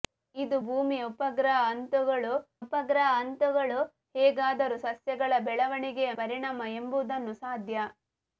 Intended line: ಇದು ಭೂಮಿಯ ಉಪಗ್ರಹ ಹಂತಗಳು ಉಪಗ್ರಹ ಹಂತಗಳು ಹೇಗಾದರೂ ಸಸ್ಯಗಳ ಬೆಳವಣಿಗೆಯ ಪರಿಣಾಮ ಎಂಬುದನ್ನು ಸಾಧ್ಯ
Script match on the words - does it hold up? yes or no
yes